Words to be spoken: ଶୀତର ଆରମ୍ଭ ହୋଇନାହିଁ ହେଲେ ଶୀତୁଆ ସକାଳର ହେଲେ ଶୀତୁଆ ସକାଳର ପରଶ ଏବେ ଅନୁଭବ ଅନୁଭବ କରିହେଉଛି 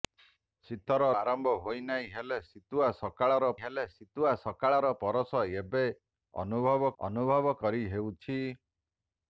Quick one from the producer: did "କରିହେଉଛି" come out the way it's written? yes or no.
yes